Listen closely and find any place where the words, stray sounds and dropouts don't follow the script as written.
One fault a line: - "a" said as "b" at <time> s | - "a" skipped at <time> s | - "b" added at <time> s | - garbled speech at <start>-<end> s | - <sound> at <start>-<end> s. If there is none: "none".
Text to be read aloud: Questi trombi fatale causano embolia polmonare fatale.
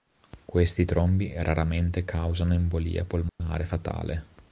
- "fatale" said as "raramente" at 1.4 s
- dropout at 3.3-3.4 s